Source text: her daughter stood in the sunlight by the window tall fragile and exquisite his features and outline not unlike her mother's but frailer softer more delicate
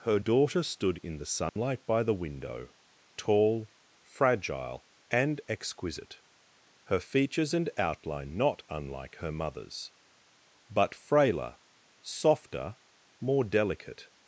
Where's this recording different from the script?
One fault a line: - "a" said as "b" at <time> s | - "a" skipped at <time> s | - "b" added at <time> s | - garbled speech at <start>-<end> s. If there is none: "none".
- "his" said as "her" at 6.8 s